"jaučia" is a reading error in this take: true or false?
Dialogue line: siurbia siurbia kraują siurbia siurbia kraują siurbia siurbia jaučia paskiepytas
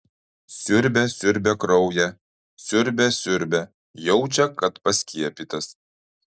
true